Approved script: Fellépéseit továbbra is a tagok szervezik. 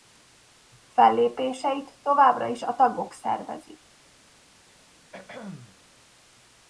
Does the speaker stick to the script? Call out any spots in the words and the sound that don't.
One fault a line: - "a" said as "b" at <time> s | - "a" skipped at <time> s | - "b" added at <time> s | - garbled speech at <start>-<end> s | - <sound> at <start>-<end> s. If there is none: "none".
- throat clearing at 5.1-5.8 s